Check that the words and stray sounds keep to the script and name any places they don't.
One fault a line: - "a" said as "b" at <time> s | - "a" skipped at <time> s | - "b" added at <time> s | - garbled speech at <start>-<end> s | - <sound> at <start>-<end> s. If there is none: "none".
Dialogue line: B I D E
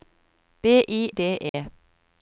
- dropout at 1.5-1.5 s